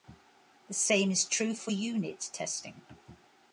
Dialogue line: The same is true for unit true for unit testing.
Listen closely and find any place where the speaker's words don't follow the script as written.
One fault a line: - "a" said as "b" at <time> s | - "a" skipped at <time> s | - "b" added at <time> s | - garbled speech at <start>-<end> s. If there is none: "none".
- "true for unit" skipped at 2.3 s